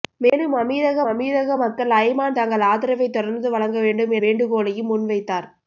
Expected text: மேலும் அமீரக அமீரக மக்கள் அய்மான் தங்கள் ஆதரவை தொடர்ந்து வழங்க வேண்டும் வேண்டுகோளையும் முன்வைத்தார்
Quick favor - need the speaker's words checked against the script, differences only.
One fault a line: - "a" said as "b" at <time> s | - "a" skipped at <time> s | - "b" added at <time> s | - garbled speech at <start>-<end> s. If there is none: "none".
none